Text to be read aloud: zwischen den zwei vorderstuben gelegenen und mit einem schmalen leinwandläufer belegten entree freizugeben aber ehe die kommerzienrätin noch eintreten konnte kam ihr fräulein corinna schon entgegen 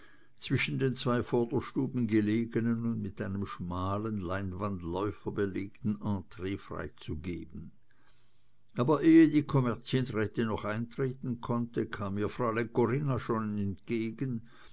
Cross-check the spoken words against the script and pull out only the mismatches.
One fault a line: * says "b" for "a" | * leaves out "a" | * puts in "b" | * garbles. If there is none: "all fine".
all fine